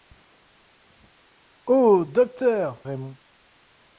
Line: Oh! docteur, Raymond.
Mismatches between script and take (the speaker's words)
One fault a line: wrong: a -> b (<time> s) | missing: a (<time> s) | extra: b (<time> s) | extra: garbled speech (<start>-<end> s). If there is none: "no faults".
no faults